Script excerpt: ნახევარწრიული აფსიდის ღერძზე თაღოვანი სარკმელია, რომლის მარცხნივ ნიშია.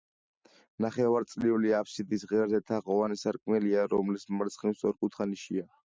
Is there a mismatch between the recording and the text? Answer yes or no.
yes